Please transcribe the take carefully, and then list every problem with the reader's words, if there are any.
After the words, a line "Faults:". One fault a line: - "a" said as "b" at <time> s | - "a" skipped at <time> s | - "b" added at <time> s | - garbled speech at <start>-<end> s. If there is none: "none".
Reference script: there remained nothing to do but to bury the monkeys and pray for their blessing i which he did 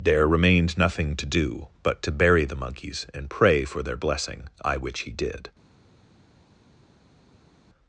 there remained nothing to do but to bury the monkeys and pray for their blessing i which he did
Faults:
none